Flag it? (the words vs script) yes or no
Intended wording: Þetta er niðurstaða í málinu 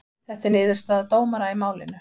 yes